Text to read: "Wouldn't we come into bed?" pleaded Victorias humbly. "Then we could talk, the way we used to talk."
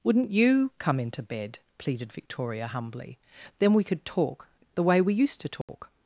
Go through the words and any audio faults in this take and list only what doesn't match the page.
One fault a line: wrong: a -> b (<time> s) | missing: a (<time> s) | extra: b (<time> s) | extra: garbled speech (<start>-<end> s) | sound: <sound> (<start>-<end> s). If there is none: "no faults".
wrong: we -> you (0.3 s)
wrong: Victorias -> Victoria (2.1 s)
sound: dropout (5.6-5.7 s)